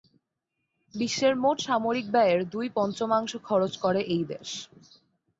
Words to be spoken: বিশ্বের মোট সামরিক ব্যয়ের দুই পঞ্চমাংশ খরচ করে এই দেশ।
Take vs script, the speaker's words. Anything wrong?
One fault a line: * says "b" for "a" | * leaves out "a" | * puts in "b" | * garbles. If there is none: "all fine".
all fine